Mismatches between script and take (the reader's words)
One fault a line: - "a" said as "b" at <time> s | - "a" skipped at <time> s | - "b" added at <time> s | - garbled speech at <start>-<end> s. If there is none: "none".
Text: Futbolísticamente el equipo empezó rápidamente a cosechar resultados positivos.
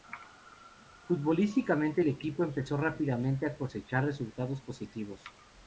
none